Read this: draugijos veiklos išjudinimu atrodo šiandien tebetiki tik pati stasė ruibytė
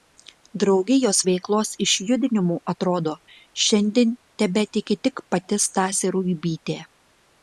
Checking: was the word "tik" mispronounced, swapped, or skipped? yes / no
no